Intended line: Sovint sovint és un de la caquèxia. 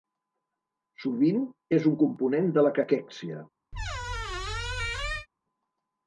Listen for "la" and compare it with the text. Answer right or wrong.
right